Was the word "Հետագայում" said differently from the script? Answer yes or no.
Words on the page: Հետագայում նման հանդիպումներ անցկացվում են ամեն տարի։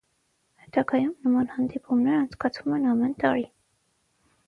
no